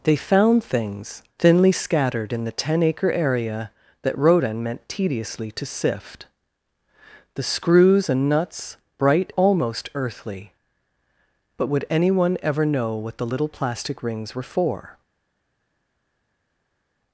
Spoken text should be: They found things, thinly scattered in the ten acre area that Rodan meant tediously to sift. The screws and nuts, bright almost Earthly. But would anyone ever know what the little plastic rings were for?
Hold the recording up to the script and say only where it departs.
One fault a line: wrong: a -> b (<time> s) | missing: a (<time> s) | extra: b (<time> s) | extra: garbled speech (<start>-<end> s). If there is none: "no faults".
no faults